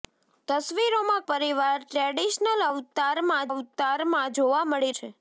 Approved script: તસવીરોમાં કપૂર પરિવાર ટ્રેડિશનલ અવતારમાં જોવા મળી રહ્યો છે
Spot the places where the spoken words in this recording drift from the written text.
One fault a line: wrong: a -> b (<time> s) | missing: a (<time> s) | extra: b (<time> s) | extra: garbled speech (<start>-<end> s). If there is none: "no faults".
missing: કપૂર (1.2 s)
extra: અવતારમાં (3.5 s)
missing: રહ્યો (5.0 s)